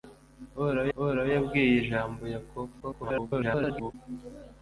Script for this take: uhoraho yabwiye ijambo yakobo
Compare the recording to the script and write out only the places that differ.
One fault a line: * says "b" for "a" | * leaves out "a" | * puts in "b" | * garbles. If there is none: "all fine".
* puts in "uhoraho"
* garbles